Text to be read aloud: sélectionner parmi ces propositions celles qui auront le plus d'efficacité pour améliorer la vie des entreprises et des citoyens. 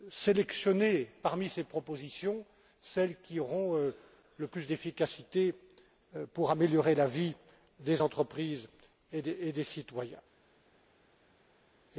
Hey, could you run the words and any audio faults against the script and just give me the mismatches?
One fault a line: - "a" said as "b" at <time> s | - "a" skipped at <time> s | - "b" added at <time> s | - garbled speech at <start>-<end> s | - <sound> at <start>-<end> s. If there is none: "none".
none